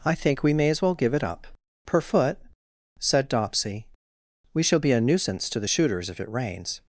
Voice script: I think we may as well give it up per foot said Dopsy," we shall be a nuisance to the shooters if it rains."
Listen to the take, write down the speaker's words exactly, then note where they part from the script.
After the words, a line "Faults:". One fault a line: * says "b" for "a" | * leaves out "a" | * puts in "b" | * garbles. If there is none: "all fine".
I think we may as well give it up per foot said Dopsy," we shall be a nuisance to the shooters if it rains."
Faults:
all fine